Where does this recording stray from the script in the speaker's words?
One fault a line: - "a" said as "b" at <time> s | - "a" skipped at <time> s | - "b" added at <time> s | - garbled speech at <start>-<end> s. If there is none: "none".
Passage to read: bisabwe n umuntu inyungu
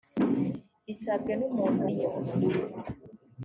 none